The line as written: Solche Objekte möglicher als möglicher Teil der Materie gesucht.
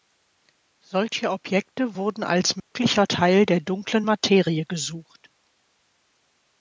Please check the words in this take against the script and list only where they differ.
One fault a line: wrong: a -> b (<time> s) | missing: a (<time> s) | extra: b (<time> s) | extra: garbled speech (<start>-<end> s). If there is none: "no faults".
wrong: möglicher -> wurden (1.9 s)
extra: Dunklen (3.6 s)